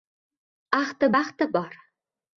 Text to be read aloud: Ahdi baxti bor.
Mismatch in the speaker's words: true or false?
false